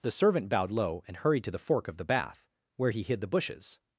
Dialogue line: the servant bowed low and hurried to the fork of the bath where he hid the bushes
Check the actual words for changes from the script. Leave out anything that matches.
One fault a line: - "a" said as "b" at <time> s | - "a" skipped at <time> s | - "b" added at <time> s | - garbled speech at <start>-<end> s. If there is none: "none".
none